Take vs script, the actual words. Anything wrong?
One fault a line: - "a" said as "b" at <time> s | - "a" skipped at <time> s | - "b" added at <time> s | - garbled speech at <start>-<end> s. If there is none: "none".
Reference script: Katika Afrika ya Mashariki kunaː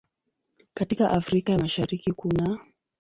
none